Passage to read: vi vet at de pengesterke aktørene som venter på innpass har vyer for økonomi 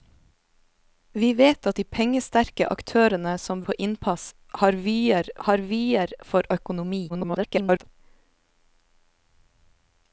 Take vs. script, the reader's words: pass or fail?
fail